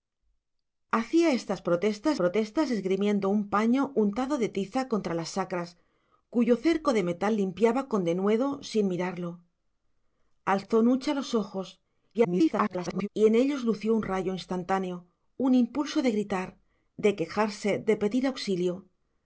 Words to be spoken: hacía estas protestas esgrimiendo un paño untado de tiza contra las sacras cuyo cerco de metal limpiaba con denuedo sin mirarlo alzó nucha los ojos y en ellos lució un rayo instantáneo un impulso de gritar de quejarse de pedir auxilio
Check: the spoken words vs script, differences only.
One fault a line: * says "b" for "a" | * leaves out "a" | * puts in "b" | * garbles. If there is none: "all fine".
* puts in "protestas"
* garbles